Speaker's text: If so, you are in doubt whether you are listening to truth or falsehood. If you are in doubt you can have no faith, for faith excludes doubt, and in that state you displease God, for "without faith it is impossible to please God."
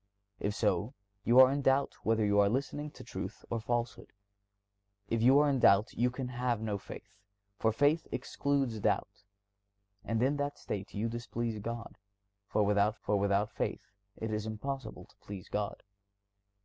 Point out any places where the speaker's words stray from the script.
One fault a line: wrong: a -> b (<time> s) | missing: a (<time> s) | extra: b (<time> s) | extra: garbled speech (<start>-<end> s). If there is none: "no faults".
extra: for without (13.0 s)